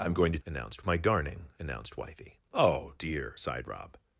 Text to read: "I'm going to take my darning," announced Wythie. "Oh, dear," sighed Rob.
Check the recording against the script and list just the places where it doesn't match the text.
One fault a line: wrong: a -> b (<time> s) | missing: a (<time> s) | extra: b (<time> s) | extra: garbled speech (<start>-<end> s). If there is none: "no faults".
wrong: take -> announced (0.5 s)